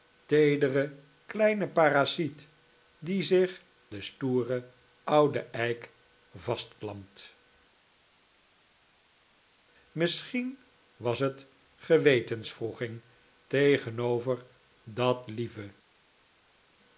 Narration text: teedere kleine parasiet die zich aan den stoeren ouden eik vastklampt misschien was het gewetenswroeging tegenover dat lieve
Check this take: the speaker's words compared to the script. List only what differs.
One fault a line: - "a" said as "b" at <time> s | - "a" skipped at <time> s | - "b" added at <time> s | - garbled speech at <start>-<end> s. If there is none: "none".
- "aan" skipped at 3.6 s